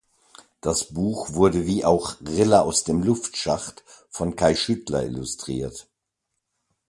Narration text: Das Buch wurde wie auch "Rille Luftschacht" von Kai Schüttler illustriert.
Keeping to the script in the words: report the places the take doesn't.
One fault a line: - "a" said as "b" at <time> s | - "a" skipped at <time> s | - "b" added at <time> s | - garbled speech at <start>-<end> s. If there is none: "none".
- "aus dem" added at 2.6 s